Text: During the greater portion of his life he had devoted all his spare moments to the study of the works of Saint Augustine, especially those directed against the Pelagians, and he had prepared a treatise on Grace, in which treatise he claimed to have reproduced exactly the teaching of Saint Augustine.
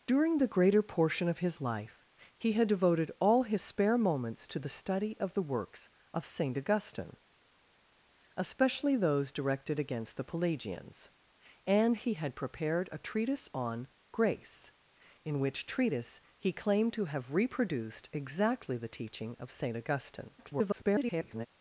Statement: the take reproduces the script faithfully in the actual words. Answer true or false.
false